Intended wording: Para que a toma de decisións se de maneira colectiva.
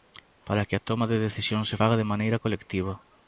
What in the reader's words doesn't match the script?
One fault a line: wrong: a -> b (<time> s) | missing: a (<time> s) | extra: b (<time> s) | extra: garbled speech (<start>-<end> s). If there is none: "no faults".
extra: faga (1.8 s)